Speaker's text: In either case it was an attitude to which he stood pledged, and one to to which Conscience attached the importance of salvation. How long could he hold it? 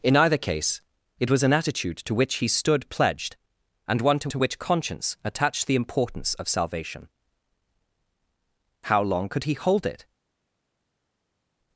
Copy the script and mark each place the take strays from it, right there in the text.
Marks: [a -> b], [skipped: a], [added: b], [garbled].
In either case it was an attitude to which he stood pledged, and one to to which Conscience attached the importance of salvation. How long could he hold it?